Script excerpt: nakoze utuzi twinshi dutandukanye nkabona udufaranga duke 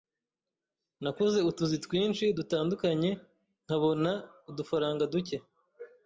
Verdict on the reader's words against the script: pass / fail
pass